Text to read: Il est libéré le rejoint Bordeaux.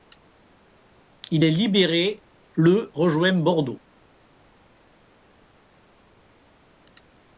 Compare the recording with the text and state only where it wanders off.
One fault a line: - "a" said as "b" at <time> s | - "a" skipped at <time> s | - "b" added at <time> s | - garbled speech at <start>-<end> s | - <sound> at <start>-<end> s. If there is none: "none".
none